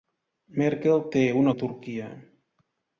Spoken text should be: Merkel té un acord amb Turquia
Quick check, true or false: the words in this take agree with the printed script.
false